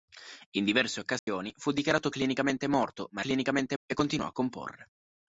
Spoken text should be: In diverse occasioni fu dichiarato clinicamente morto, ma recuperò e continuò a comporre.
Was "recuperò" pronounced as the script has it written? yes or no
no